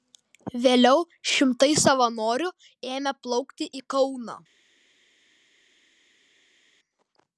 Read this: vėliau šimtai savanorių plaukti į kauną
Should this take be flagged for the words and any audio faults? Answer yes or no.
yes